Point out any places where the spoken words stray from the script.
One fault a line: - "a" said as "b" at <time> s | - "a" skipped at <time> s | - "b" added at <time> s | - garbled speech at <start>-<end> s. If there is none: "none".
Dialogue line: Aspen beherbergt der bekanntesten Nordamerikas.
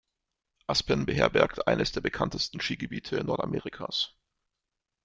- "eines" added at 1.7 s
- "Skigebiete" added at 2.6 s